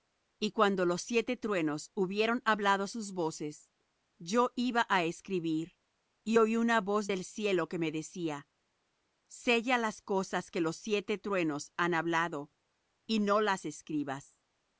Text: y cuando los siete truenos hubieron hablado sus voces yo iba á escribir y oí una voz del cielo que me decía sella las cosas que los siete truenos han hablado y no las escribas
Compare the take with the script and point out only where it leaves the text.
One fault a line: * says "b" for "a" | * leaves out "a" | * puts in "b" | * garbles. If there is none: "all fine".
all fine